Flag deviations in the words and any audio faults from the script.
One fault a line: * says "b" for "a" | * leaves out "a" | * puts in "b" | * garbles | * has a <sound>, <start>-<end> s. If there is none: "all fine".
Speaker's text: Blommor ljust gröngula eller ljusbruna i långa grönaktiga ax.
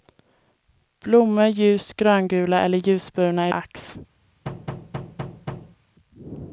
* leaves out "långa grönaktiga"
* has a thud, 4.5-5.8 s